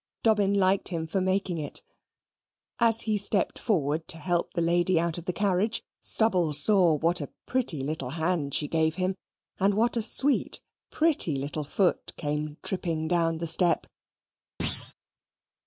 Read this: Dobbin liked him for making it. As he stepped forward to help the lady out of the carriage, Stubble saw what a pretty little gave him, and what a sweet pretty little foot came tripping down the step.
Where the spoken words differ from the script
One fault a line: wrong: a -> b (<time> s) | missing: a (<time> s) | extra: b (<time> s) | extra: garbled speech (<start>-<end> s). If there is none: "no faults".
extra: hand she (8.1 s)